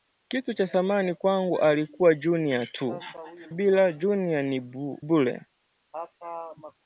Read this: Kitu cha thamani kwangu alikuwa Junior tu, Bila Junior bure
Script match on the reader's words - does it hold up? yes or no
yes